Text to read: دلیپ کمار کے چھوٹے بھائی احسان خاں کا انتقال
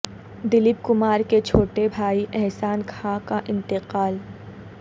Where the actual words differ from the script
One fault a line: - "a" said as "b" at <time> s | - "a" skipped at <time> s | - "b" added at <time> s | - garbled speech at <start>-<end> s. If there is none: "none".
none